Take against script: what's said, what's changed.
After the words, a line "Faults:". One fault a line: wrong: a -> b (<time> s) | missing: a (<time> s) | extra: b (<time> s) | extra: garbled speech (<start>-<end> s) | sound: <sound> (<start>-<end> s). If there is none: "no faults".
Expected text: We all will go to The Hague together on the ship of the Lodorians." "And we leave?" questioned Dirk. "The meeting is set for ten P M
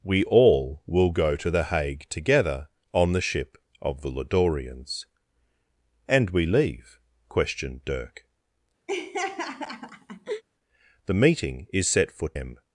We all will go to The Hague together on the ship of the Lodorians." "And we leave?" questioned Dirk. "The meeting is set for M
Faults:
sound: laugh (8.9-10.4 s)
missing: ten P (12.3 s)